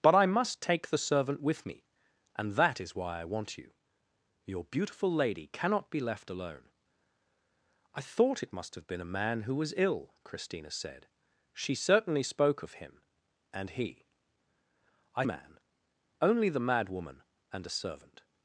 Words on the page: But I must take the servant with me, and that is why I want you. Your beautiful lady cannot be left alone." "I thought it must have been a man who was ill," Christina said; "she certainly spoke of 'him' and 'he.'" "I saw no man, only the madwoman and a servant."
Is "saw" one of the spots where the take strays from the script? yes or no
yes